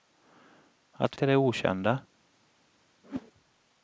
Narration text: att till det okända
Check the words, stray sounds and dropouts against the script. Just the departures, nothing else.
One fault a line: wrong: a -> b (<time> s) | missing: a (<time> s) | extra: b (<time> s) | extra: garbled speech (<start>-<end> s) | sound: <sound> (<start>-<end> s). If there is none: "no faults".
sound: whoosh (3.0-3.3 s)